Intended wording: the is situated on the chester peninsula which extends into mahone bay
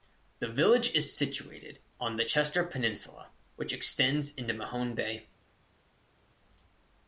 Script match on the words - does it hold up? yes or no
no